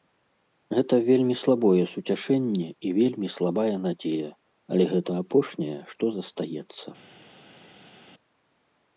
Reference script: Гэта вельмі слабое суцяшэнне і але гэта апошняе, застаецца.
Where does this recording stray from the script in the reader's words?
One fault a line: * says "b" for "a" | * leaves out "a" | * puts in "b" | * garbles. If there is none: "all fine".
* puts in "вельмі слабая надзея"
* puts in "што"